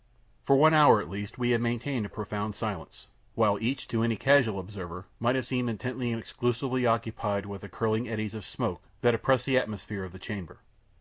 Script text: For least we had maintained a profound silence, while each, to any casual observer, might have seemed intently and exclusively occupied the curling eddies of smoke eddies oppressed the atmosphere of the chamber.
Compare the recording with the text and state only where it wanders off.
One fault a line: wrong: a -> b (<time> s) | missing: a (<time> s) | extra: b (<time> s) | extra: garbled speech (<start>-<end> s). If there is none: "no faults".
extra: one hour at (0.6 s)
extra: with (7.5 s)
wrong: eddies -> that (9.0 s)